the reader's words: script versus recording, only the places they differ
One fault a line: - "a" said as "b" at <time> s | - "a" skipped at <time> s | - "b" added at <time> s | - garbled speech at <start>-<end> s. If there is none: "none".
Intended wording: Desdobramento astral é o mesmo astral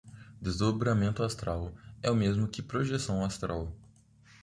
- "que projeção" added at 2.5 s